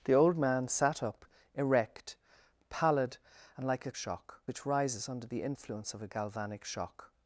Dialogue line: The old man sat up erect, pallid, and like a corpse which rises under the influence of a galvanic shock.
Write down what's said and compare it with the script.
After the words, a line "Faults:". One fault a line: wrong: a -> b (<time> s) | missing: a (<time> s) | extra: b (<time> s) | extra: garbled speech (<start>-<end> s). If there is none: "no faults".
The old man sat up erect, pallid, and like a shock which rises under the influence of a galvanic shock.
Faults:
wrong: corpse -> shock (3.9 s)